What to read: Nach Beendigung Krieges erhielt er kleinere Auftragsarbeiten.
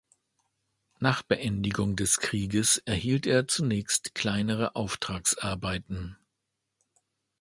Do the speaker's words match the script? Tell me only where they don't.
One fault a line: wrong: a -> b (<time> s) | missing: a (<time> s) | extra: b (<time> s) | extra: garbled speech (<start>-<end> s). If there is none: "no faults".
extra: des (1.9 s)
extra: zunächst (3.5 s)